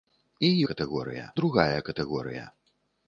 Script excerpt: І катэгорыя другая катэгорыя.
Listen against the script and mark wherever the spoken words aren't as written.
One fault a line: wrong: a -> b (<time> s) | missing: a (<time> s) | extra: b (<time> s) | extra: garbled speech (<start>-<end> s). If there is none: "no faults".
no faults